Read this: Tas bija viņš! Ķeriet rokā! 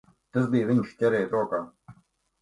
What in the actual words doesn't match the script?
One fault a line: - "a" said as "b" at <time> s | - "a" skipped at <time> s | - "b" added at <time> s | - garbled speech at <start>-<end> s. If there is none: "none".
none